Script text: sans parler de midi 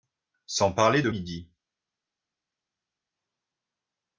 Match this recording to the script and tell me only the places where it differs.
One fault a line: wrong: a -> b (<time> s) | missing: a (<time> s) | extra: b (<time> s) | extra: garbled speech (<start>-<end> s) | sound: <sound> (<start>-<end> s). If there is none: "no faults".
no faults